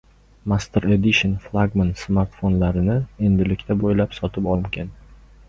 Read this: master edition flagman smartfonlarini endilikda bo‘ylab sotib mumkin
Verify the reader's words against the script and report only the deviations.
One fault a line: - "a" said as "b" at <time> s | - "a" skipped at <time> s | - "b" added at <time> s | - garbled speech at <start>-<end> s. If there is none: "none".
none